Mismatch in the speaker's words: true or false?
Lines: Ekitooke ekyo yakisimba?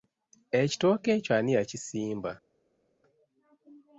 true